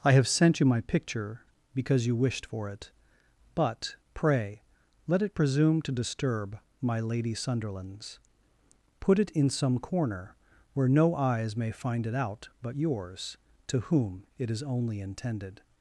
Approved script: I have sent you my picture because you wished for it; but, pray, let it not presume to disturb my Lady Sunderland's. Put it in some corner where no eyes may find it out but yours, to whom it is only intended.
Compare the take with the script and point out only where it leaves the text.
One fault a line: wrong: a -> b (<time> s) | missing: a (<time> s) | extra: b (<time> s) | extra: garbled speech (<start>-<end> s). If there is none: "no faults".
missing: not (5.4 s)